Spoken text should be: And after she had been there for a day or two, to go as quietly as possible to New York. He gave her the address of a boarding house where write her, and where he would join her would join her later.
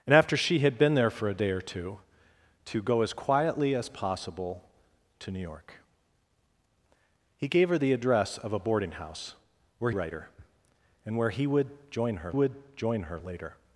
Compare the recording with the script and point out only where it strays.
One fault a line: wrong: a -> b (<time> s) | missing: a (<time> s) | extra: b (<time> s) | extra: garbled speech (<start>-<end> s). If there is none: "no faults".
no faults